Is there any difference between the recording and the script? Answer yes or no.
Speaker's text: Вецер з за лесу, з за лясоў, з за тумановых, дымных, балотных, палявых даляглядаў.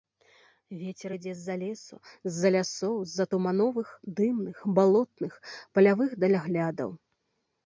yes